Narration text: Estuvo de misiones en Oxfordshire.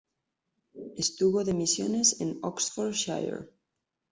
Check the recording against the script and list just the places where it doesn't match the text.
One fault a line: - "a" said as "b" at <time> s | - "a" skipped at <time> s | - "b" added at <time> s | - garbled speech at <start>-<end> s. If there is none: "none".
none